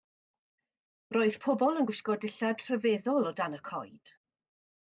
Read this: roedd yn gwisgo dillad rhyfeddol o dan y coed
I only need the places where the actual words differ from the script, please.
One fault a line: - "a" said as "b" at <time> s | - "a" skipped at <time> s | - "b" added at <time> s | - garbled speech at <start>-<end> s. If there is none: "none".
- "pobl" added at 1.5 s